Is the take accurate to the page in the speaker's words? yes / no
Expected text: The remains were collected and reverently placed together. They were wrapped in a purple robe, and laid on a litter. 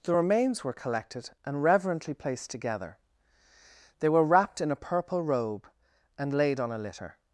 yes